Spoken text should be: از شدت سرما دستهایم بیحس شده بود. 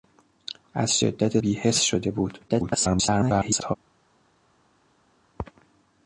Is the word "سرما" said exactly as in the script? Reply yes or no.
no